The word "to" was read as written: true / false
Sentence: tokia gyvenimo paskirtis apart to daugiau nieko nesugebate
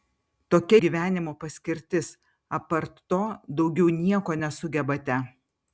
true